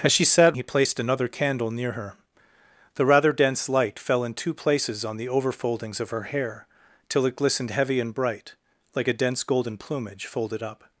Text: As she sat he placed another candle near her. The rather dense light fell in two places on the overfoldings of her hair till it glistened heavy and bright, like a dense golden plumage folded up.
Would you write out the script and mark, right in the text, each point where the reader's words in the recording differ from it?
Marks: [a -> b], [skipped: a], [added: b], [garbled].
As she sat he placed another candle near her. The rather dense light fell in two places on the overfoldings of her hair till it glistened heavy and bright, like a dense golden plumage folded up.